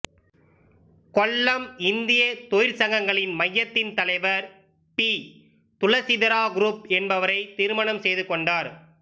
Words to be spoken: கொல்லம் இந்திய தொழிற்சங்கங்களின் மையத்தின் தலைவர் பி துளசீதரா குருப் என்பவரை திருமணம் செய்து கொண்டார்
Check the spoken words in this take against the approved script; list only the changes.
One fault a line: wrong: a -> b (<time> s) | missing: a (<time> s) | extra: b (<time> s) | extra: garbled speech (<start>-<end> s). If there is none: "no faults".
no faults